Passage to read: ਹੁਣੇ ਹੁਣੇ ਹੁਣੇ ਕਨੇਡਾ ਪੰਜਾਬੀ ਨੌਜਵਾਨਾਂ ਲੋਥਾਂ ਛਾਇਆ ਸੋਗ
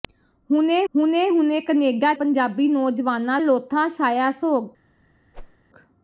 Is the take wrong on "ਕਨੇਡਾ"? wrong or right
right